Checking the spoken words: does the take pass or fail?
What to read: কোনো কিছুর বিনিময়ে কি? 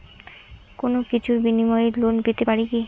fail